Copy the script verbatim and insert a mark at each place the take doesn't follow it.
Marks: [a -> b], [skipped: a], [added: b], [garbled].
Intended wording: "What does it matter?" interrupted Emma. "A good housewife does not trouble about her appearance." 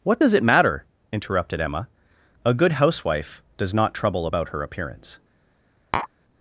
"What does it matter?" interrupted Emma. "A good housewife does not trouble about her appearance."